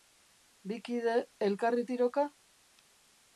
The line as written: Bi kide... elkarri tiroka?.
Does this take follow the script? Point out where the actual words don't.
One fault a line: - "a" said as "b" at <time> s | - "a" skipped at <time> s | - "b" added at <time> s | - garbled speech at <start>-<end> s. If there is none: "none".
none